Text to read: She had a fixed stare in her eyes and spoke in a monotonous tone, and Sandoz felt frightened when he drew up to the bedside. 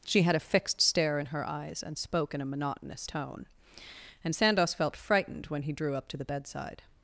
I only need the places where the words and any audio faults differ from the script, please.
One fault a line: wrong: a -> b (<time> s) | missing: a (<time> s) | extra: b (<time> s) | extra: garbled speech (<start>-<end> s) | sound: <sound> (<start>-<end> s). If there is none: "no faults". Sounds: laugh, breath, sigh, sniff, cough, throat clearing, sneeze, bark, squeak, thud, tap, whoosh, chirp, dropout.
no faults